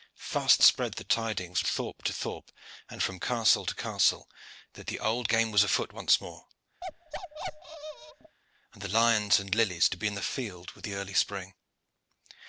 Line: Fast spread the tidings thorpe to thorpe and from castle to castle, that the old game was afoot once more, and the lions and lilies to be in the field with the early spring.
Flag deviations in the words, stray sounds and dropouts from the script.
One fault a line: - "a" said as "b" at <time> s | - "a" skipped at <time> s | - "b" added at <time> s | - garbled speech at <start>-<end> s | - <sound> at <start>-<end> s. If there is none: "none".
- bark at 6.8-8.4 s